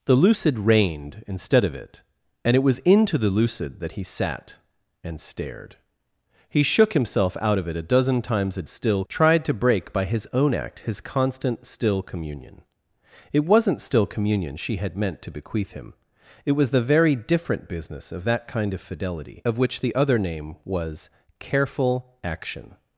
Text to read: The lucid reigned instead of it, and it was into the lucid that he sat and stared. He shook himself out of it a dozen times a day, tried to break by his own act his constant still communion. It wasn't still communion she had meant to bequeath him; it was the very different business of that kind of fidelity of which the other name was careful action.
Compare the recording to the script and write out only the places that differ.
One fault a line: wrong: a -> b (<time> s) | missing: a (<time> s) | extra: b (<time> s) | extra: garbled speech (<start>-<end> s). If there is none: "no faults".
wrong: day -> still (8.7 s)